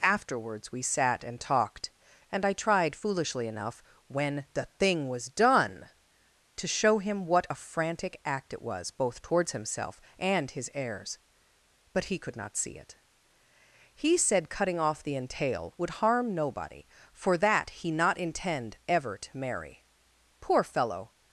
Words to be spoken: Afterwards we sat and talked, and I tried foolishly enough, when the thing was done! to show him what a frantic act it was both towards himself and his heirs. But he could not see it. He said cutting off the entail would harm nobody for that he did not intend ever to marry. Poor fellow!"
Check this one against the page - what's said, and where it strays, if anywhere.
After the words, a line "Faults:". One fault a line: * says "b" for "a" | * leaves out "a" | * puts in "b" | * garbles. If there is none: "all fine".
Afterwards we sat and talked, and I tried foolishly enough, when the thing was done! to show him what a frantic act it was both towards himself and his heirs. But he could not see it. He said cutting off the entail would harm nobody for that he not intend ever to marry. Poor fellow!"
Faults:
* leaves out "did"